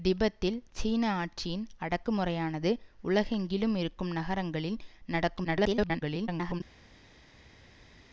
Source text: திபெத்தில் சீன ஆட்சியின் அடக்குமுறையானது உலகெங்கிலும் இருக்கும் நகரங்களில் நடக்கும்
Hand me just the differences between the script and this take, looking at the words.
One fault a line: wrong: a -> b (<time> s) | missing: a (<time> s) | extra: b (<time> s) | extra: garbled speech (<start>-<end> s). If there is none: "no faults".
extra: garbled speech (5.4-6.6 s)